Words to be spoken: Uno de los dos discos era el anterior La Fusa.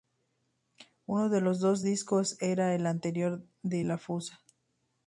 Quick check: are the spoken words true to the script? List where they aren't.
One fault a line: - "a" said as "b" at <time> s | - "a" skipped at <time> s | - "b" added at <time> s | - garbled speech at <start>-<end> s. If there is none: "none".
- "de" added at 3.6 s